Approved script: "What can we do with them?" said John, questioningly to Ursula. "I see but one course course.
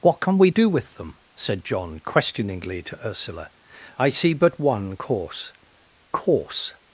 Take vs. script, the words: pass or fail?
pass